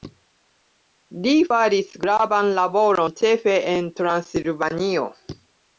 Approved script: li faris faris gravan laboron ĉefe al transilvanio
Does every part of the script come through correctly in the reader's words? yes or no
no